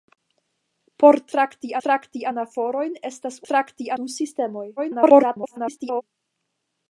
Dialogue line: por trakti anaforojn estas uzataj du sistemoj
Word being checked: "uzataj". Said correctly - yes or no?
no